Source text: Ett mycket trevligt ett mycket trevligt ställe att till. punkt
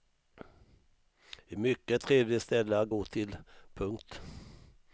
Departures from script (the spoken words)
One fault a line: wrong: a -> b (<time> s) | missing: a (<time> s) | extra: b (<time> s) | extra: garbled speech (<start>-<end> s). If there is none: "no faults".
missing: ett mycket trevligt (2.4 s)
extra: gå (2.9 s)